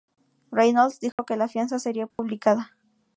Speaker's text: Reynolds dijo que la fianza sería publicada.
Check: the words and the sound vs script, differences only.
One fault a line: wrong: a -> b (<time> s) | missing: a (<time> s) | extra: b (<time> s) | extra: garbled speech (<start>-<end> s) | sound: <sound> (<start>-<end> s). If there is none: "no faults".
sound: dropout (1.1-1.2 s)
sound: dropout (2.1-2.2 s)